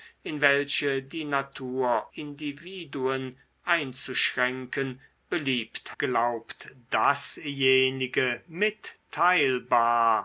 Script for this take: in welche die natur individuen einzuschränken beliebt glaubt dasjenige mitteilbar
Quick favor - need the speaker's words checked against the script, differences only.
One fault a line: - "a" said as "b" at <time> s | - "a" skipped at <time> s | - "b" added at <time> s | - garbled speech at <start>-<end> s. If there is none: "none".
none